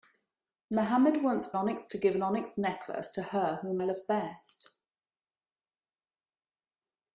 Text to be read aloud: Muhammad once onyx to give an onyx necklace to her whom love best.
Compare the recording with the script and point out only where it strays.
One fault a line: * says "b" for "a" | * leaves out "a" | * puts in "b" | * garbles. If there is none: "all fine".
all fine